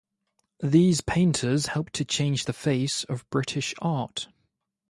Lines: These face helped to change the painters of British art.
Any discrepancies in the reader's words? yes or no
yes